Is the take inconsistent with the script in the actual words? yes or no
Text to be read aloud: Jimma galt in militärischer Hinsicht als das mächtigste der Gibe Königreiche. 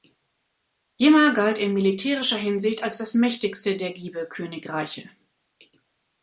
no